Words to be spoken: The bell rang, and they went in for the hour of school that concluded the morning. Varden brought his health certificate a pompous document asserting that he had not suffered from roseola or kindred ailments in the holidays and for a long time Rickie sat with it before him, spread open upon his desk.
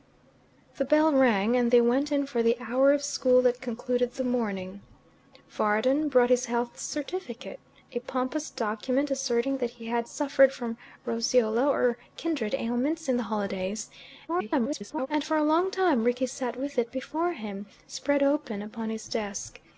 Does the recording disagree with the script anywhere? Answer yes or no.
yes